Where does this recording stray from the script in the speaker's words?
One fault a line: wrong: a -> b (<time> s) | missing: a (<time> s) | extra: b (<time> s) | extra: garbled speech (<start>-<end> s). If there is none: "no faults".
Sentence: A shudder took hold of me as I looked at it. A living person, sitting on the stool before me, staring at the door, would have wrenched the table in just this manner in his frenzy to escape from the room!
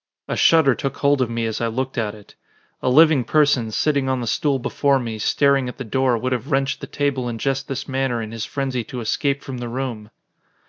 no faults